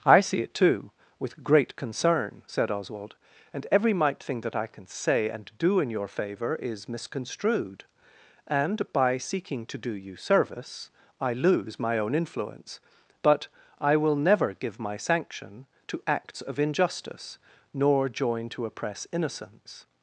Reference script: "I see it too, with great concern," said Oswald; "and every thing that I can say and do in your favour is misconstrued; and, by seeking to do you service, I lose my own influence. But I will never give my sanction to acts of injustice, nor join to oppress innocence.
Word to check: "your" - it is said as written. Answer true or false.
true